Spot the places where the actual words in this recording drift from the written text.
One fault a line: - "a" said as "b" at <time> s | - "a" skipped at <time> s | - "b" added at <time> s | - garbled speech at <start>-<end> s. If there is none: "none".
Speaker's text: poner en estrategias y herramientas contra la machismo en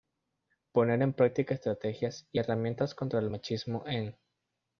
- "práctica" added at 1.1 s
- "la" said as "el" at 3.2 s